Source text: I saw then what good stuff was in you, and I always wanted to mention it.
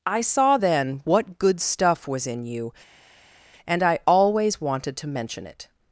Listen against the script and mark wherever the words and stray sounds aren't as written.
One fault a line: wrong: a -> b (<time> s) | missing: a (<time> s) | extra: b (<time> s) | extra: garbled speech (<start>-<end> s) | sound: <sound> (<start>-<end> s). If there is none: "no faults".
no faults